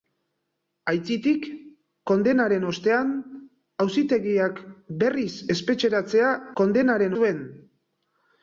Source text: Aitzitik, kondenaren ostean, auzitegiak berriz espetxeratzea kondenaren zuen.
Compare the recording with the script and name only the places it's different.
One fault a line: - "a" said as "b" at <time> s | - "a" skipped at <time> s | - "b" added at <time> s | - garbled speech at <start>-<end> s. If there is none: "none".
none